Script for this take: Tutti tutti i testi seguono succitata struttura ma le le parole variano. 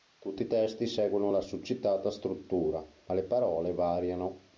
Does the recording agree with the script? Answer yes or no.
no